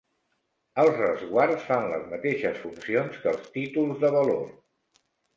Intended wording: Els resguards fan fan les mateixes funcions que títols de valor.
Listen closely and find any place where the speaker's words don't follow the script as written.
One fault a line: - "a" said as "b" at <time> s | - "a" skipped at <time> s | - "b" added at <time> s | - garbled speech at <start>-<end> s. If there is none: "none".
- "fan" skipped at 1.9 s
- "els" added at 3.3 s